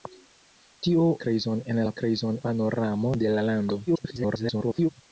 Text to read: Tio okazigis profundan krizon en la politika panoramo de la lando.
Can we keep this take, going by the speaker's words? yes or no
no